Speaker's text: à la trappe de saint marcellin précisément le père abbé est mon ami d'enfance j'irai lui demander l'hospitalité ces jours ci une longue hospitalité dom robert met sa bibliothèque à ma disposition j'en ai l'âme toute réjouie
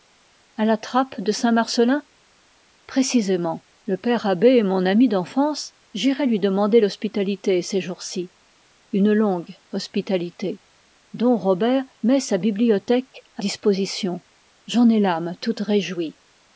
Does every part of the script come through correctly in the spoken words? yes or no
no